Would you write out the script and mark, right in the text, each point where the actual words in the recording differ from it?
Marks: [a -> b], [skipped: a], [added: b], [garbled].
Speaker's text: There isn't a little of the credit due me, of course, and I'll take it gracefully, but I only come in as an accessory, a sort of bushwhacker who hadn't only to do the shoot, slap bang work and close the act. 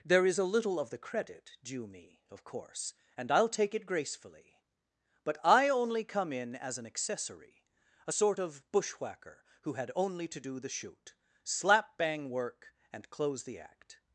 There [isn't -> is] a little of the credit due me, of course, and I'll take it gracefully, but I only come in as an accessory, a sort of bushwhacker who [hadn't -> had] only to do the shoot, slap bang work and close the act.